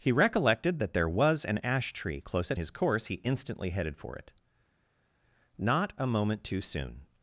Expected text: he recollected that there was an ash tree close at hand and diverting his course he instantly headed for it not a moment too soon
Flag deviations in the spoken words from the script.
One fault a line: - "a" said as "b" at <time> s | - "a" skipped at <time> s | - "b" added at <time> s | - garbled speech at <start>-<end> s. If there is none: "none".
- "hand and diverting" skipped at 2.6 s